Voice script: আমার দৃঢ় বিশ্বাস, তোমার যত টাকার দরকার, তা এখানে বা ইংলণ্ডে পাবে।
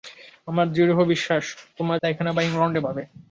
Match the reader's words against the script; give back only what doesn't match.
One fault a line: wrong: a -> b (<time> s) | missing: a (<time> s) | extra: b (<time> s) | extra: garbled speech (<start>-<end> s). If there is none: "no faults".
missing: যত টাকার দরকার (2.0 s)